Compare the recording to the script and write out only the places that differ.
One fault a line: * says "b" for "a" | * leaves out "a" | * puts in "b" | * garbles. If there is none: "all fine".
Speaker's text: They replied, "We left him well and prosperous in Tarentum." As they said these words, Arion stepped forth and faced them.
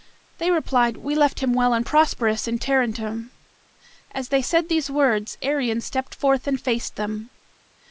all fine